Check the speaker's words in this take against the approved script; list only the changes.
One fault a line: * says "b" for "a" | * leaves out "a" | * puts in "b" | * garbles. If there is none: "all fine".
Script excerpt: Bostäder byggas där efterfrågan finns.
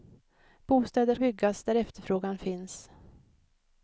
all fine